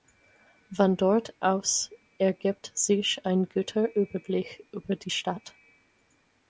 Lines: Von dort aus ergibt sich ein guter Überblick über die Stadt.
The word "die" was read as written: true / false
true